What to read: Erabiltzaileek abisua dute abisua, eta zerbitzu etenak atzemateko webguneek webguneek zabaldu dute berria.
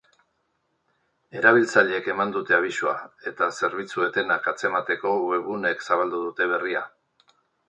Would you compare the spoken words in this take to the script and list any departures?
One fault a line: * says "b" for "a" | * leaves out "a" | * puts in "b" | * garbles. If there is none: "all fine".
* says "eman" for "abisua"
* leaves out "webguneek"